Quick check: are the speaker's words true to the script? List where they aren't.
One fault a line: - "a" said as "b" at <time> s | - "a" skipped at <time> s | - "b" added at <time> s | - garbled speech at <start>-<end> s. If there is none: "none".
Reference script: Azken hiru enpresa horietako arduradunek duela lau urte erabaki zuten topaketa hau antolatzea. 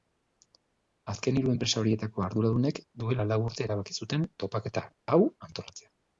none